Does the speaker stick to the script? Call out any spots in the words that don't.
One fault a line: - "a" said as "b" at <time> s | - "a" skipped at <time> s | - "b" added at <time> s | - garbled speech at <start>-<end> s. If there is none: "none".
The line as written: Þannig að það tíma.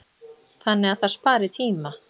- "spari" added at 1.2 s